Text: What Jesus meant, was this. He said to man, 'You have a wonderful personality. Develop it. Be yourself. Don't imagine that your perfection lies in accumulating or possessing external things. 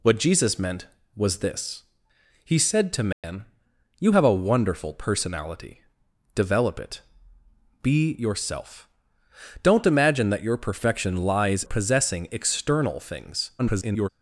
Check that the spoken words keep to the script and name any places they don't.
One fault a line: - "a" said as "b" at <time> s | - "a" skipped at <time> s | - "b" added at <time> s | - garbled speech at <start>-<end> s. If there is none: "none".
- "in accumulating or" skipped at 11.6 s
- garbled speech at 13.6-14.1 s